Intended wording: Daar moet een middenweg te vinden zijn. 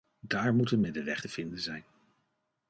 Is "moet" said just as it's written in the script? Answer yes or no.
yes